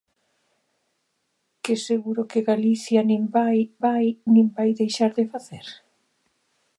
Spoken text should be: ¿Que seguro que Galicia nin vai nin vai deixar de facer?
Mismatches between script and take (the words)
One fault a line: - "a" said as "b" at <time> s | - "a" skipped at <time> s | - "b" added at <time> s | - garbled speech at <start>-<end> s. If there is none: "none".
- "vai" added at 3.8 s